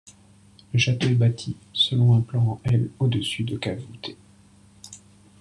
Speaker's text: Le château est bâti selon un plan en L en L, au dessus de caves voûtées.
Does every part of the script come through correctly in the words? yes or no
no